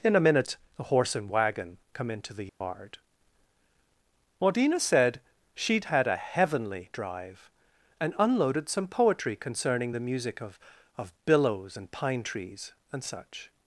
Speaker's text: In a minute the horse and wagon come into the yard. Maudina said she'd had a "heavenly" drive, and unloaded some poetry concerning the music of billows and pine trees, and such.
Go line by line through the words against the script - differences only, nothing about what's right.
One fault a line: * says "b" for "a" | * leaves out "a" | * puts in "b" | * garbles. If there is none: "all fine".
* puts in "of"